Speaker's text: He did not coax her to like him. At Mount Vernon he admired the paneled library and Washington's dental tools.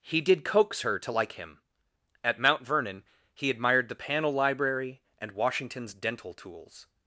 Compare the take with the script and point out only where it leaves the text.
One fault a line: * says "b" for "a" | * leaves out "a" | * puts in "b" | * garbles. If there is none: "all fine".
* leaves out "not"
* says "panel" for "paneled"